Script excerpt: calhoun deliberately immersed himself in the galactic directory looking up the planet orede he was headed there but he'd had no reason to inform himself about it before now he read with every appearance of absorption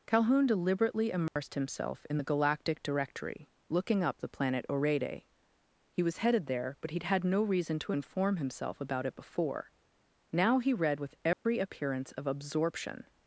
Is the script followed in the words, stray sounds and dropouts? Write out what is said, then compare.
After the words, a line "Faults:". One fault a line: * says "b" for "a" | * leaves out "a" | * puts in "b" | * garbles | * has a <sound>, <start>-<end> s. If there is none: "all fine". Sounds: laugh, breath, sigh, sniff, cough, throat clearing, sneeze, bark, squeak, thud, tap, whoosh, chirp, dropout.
calhoun deliberately immersed himself in the galactic directory looking up the planet orede he was headed there but he'd had no reason to inform himself about it before now he read with every appearance of absorption
Faults:
* has a dropout, 1.3-1.4 s
* has a dropout, 11.3-11.5 s